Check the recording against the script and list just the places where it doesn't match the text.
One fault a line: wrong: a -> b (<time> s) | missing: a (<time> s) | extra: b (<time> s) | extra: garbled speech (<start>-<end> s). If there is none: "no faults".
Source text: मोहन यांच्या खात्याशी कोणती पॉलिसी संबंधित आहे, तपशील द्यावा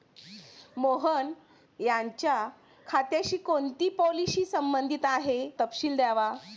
no faults